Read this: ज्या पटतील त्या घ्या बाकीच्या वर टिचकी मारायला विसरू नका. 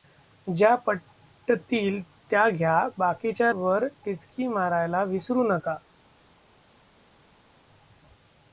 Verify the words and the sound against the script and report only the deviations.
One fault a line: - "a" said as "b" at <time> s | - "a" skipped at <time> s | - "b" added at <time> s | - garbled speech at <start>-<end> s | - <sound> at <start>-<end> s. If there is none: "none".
none